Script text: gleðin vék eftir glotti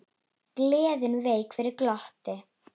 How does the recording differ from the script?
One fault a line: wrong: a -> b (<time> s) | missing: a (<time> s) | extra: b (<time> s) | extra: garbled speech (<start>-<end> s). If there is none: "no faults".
wrong: eftir -> fyrir (1.6 s)